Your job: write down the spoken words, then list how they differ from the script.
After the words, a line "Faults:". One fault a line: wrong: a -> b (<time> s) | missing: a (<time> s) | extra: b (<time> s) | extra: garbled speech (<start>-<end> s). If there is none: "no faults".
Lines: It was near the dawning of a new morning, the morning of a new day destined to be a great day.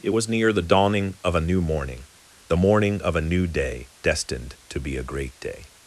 It was near the dawning of a new morning, the morning of a new day destined to be a great day.
Faults:
no faults